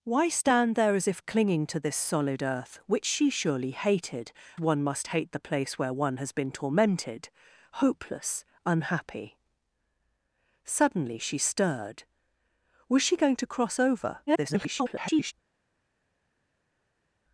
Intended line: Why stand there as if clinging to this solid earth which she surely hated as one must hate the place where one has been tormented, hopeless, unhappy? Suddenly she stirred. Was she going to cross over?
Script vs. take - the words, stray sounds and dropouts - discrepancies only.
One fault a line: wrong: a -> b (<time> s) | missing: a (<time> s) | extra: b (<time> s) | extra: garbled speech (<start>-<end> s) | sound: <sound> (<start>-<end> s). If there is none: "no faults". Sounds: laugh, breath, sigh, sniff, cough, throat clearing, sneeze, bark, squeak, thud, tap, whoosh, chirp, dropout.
missing: as (4.3 s)
extra: garbled speech (14.3-15.3 s)